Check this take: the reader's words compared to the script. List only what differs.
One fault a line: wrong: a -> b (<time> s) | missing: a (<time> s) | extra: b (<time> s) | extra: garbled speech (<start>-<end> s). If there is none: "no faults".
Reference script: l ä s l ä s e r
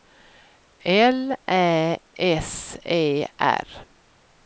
missing: l ä s (2.8 s)